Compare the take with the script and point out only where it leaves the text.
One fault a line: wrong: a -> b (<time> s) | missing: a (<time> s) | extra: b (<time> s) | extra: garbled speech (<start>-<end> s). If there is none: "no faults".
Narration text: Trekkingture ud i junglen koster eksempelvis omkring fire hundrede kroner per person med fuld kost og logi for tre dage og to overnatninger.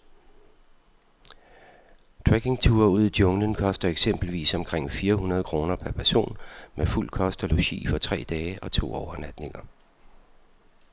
no faults